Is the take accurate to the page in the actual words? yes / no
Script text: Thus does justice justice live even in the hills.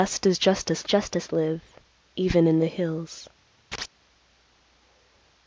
yes